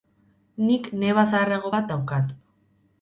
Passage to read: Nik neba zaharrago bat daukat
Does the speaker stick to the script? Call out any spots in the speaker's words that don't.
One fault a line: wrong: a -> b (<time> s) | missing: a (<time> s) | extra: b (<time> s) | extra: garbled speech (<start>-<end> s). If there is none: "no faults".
no faults